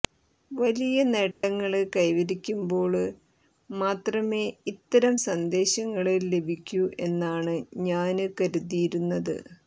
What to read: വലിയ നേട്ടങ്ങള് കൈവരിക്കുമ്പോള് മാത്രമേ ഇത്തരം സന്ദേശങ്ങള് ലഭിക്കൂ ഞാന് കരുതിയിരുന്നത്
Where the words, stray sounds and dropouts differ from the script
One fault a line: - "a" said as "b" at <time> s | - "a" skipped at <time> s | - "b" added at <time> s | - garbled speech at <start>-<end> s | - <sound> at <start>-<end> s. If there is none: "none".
- dropout at 1.3-1.4 s
- "എന്നാണ്" added at 7.1 s